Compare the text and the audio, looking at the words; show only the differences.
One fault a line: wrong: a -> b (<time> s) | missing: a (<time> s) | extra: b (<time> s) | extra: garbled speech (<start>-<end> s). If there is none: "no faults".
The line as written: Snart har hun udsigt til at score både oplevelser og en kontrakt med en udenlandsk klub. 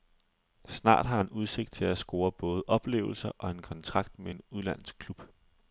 wrong: hun -> han (1.2 s)